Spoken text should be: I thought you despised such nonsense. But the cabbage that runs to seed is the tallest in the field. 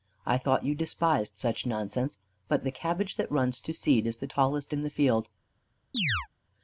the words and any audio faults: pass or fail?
fail